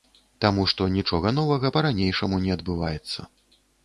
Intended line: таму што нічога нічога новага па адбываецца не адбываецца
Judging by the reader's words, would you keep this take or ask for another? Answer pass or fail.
fail